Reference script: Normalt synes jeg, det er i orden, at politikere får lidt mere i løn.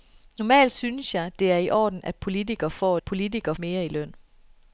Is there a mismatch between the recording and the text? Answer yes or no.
yes